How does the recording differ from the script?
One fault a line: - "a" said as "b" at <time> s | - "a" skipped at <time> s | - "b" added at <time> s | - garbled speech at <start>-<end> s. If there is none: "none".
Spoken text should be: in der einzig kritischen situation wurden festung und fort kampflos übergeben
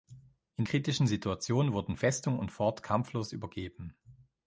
- "der einzig" skipped at 0.7 s